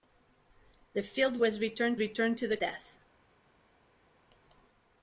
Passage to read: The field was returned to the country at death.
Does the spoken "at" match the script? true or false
false